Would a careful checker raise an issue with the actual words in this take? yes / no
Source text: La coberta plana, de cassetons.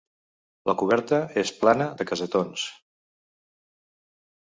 yes